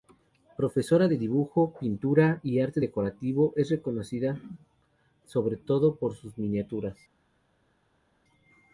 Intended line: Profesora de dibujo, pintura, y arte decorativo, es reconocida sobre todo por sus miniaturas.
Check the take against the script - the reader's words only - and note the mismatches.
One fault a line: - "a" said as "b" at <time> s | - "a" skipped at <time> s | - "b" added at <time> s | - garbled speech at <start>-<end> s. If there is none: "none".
none